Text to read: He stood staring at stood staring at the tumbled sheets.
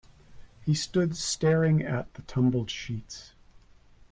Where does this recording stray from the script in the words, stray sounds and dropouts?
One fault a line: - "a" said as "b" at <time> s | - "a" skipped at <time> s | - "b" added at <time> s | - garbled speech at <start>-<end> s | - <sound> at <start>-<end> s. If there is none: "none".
- "stood staring at" skipped at 2.1 s